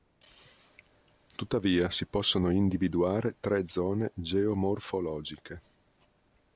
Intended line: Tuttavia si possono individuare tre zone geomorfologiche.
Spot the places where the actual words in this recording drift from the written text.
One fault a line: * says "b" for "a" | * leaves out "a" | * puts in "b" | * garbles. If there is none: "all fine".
all fine